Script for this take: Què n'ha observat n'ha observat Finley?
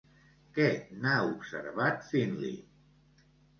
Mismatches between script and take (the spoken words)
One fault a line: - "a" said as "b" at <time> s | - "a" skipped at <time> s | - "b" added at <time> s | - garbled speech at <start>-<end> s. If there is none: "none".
- "n'ha observat" skipped at 2.1 s